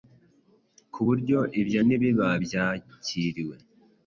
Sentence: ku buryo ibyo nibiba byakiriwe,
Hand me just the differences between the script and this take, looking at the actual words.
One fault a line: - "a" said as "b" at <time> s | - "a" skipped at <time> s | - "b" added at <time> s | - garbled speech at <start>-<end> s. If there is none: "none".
none